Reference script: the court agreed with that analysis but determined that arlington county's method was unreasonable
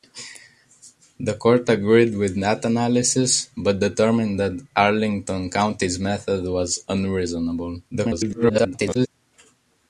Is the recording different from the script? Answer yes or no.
yes